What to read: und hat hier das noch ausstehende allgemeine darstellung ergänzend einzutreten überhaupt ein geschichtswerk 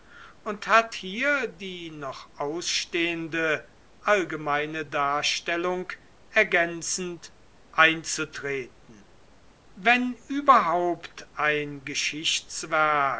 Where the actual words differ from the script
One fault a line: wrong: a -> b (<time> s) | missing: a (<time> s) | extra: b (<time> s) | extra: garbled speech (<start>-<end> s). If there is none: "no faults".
wrong: das -> die (1.5 s)
extra: wenn (9.7 s)